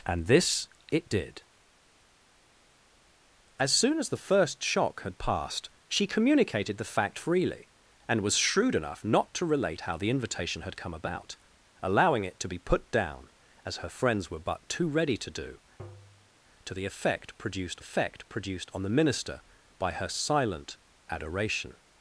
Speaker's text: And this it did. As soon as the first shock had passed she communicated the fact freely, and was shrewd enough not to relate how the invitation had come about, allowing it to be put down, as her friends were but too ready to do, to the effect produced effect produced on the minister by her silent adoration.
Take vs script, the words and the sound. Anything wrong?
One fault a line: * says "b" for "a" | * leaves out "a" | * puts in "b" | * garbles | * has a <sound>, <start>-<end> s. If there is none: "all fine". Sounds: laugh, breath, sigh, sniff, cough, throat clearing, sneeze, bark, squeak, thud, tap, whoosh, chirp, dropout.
* has a tap, 15.8-16.3 s